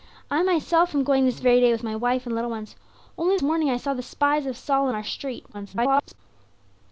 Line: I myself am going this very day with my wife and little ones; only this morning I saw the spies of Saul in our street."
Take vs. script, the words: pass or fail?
fail